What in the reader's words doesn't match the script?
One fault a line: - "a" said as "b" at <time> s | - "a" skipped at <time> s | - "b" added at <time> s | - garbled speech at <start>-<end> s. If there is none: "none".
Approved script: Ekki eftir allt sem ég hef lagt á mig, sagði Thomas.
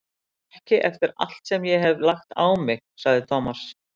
none